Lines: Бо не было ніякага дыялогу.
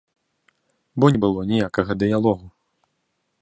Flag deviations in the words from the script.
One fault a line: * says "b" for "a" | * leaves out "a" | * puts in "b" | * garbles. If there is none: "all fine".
all fine